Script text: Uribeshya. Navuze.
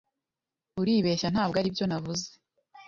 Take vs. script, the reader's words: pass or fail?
fail